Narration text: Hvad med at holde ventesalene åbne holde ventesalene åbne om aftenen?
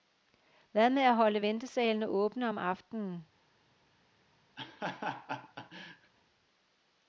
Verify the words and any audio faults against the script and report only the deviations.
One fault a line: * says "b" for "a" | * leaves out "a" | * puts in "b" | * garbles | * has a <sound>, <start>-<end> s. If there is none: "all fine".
* leaves out "holde ventesalene åbne"
* has a laugh, 4.6-6.1 s